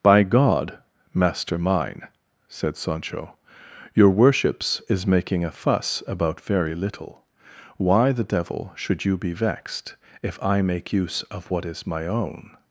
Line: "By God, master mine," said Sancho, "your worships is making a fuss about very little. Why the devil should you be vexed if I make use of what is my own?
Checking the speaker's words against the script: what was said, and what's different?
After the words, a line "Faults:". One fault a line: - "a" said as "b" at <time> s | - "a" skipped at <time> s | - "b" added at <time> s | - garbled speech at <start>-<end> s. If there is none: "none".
"By God, master mine," said Sancho, "your worships is making a fuss about very little. Why the devil should you be vexed if I make use of what is my own?
Faults:
none